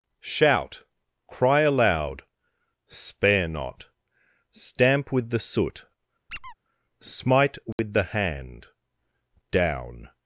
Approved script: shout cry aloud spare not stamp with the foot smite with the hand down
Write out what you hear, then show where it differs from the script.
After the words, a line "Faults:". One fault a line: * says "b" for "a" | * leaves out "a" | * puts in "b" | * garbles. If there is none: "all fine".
shout cry aloud spare not stamp with the soot smite with the hand down
Faults:
* says "soot" for "foot"